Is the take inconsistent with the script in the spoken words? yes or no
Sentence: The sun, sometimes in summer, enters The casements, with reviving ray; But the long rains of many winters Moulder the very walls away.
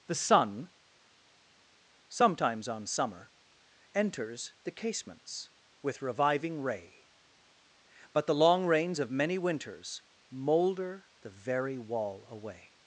yes